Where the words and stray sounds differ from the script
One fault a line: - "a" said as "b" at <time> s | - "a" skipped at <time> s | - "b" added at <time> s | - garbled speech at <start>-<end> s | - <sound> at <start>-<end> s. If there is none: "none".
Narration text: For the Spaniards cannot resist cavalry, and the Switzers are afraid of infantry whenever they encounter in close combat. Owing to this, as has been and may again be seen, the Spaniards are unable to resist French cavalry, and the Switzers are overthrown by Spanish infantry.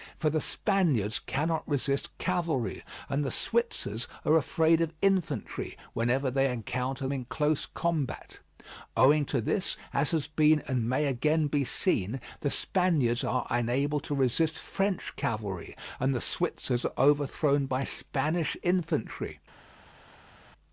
none